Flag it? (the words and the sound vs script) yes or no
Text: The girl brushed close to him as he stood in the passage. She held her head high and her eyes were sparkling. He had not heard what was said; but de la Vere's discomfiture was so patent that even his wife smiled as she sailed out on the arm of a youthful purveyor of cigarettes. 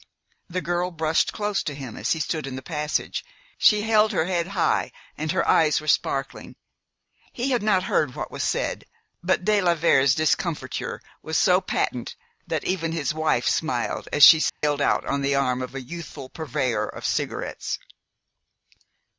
yes